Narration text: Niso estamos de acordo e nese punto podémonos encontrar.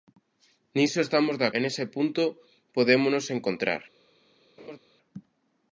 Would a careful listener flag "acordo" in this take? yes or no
yes